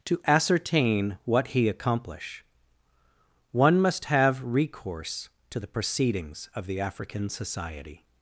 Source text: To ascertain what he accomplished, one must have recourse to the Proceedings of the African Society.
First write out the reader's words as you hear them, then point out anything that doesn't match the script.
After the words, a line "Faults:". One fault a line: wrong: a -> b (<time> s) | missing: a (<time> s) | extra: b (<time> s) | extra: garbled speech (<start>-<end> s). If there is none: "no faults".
To ascertain what he accomplish, one must have recourse to the Proceedings of the African Society.
Faults:
wrong: accomplished -> accomplish (1.7 s)